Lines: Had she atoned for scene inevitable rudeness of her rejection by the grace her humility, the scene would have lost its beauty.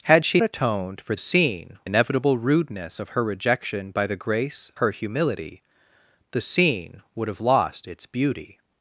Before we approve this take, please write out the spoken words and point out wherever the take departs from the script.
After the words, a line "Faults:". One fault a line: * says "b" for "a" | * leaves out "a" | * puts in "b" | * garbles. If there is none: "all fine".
Had she atoned for scene inevitable rudeness of her rejection by the grace her humility, the scene would have lost its beauty.
Faults:
all fine